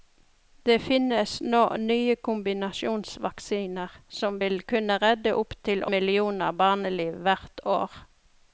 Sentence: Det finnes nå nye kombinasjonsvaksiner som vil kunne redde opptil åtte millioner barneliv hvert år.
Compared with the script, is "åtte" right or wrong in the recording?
wrong